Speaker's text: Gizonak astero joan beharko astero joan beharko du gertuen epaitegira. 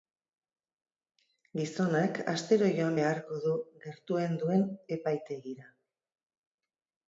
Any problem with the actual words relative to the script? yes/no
yes